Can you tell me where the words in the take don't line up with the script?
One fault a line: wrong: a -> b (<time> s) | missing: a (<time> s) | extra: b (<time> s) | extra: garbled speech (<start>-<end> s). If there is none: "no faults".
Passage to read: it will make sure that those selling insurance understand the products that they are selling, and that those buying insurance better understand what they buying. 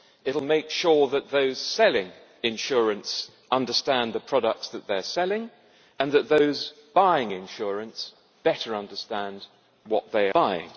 no faults